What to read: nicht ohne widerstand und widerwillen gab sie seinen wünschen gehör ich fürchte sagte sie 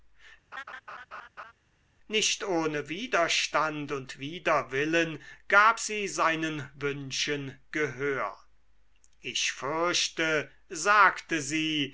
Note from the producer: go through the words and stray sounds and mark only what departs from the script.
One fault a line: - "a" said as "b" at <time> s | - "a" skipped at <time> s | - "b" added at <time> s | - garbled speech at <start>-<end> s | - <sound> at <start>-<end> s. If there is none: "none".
- laugh at 0.5-1.5 s